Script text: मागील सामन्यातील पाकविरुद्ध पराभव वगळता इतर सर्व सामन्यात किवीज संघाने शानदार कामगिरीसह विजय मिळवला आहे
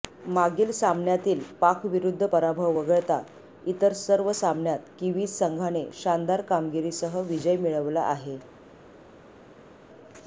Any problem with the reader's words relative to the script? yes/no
no